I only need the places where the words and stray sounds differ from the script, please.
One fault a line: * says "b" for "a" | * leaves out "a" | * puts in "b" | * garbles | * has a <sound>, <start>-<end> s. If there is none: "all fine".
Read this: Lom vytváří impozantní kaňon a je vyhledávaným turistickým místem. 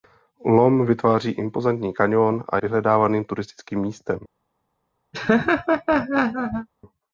* leaves out "je"
* has a laugh, 5.1-6.7 s